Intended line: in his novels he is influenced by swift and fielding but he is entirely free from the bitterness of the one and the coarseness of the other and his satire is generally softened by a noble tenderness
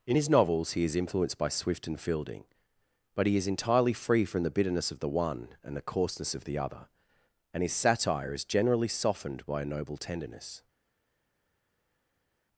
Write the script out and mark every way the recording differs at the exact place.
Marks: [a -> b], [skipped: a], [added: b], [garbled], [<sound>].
in his novels he is influenced by swift and fielding but he is entirely free from the bitterness of the one and the coarseness of the other and his satire is generally softened by a noble tenderness